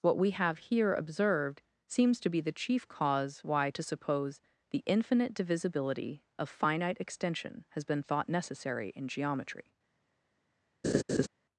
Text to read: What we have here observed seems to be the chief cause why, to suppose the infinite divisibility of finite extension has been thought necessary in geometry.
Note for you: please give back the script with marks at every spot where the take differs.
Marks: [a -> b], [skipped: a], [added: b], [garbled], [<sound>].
What we have here observed seems to be the chief cause why, to suppose the infinite divisibility of finite extension has been thought necessary in geometry. [laugh]